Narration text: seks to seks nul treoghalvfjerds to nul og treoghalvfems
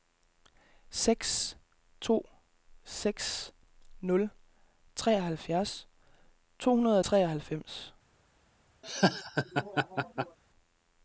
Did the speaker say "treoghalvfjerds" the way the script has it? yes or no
yes